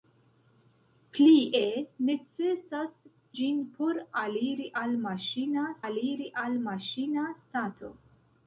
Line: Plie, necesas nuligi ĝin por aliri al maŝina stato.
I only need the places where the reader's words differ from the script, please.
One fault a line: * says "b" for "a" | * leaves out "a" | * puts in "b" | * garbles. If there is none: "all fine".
* leaves out "nuligi"
* puts in "aliri al maŝina"